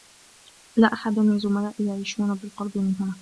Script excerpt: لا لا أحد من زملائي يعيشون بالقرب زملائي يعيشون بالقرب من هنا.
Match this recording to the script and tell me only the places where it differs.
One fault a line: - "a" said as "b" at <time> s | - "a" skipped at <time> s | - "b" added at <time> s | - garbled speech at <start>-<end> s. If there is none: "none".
- "لا" skipped at 0.9 s
- "زملائي يعيشون بالقرب" skipped at 2.8 s